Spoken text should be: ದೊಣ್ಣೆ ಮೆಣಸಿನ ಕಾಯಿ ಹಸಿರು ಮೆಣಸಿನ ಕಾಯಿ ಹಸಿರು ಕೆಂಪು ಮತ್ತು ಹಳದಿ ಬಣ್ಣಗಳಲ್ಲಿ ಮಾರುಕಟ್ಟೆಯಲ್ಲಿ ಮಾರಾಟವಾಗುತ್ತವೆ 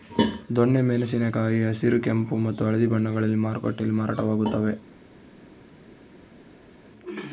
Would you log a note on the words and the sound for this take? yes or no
yes